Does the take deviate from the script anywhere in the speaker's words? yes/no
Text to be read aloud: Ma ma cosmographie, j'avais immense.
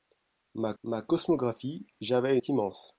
no